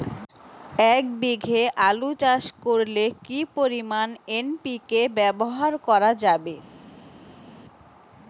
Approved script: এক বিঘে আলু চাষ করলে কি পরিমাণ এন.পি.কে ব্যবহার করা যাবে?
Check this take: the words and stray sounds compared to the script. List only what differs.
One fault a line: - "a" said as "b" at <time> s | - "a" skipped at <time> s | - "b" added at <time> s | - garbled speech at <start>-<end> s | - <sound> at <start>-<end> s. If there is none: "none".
none